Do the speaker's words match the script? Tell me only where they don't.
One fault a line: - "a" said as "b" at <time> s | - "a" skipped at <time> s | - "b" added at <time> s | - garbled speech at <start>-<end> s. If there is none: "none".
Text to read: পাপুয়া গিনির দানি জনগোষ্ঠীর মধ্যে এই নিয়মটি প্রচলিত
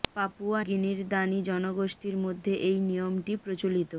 none